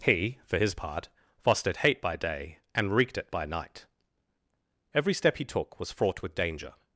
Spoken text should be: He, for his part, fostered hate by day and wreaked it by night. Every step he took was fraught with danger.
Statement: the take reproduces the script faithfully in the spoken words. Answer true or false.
true